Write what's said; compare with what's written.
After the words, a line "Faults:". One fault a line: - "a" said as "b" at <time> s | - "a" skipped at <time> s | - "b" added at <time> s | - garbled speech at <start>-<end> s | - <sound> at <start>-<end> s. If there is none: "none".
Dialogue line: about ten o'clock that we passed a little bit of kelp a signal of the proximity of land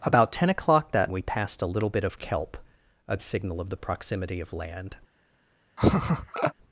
about ten o'clock that we passed a little bit of kelp a signal of the proximity of land
Faults:
- laugh at 5.8-6.5 s